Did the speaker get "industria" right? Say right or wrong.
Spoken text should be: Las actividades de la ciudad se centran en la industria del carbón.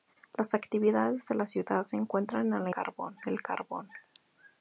wrong